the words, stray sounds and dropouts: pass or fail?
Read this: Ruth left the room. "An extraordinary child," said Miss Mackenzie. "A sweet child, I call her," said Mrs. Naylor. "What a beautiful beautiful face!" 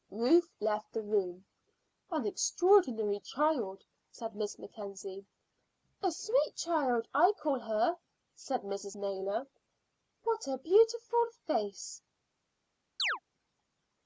fail